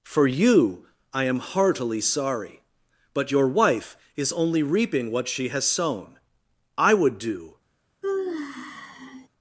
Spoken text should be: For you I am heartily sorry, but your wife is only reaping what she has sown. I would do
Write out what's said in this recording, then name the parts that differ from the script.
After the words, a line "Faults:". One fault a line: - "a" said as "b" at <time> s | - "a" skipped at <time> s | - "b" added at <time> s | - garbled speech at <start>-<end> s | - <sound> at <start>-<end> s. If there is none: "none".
For you I am heartily sorry, but your wife is only reaping what she has sown. I would do
Faults:
- sigh at 8.0-9.3 s